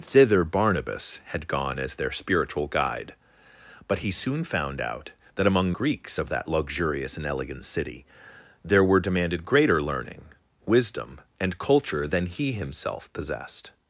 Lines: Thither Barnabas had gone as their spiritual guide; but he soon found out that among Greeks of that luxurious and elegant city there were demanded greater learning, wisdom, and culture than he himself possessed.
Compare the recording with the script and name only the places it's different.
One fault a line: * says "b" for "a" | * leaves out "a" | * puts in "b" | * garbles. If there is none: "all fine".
all fine